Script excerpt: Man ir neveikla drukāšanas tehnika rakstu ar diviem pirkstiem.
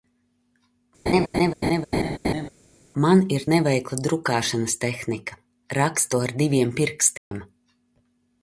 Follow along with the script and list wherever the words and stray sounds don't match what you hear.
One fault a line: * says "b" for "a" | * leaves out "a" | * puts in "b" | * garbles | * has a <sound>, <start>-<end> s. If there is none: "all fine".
* has a laugh, 1.1-2.5 s
* has a dropout, 7.2-7.3 s